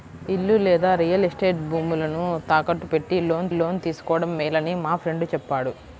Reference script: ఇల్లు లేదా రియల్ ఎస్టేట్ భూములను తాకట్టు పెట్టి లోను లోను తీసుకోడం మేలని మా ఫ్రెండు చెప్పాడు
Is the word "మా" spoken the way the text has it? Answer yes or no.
yes